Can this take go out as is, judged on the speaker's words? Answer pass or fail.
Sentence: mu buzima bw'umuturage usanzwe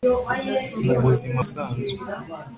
fail